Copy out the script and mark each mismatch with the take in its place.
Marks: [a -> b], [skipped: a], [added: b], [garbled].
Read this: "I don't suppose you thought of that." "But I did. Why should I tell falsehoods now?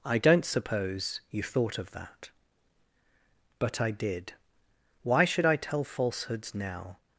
"I don't suppose you thought of that." "But I did. Why should I tell falsehoods now?